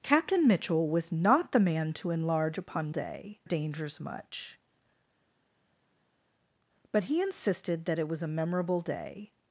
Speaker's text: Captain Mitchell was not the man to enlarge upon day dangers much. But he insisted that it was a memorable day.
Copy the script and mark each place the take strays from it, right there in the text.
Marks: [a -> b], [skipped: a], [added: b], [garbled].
Captain Mitchell was not the man to enlarge upon day dangers much. But he insisted that it was a memorable day.